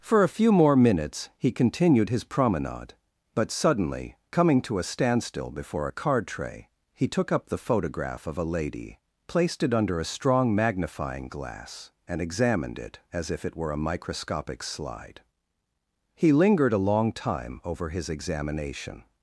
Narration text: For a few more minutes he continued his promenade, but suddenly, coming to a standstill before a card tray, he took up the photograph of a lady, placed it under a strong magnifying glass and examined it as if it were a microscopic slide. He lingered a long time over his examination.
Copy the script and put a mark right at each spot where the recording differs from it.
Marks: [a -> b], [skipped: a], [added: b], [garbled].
For a few more minutes he continued his promenade, but suddenly, coming to a standstill before a card tray, he took up the photograph of a lady, placed it under a strong magnifying glass and examined it as if it were a microscopic slide. He lingered a long time over his examination.